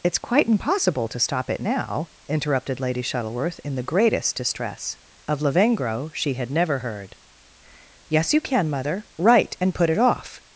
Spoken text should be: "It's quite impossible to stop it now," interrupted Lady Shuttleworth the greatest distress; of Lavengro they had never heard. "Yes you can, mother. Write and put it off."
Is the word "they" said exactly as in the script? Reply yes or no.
no